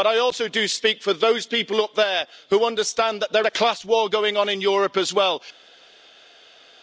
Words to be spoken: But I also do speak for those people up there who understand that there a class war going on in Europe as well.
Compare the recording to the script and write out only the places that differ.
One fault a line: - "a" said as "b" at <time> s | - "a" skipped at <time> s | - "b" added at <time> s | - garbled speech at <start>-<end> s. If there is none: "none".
none